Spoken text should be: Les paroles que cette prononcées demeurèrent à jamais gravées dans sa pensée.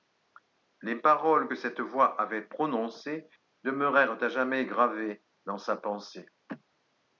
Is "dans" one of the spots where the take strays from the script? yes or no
no